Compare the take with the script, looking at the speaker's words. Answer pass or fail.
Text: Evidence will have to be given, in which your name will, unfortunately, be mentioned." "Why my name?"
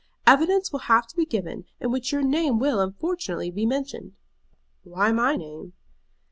pass